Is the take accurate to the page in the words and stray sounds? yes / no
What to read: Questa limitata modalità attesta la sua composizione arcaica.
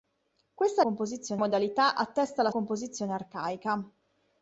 no